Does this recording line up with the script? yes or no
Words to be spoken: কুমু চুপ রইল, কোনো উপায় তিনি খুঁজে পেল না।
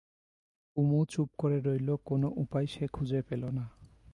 no